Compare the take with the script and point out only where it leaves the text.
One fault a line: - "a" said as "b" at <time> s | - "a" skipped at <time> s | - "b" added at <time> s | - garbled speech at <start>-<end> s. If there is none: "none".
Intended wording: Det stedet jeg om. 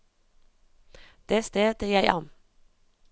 none